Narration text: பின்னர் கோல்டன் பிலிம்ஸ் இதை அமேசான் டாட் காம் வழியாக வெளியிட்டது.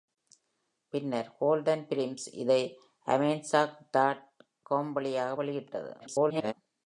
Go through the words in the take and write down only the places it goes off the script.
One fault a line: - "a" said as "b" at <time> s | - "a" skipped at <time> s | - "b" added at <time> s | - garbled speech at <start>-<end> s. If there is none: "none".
- garbled speech at 6.0-6.5 s